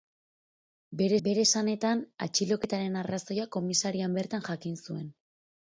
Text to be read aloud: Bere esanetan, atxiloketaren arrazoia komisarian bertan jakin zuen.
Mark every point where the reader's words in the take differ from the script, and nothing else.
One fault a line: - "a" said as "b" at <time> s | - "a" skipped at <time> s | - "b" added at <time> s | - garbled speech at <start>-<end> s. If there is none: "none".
- "bere" added at 1.3 s